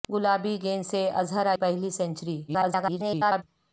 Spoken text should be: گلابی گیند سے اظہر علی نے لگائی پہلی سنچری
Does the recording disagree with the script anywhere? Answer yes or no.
yes